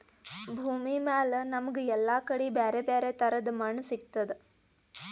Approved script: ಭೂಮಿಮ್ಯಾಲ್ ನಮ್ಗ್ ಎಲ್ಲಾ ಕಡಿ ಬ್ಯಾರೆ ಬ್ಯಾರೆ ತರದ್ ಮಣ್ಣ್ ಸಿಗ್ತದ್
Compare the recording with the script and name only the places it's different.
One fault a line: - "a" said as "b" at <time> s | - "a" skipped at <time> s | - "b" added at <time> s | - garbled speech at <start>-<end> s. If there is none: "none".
none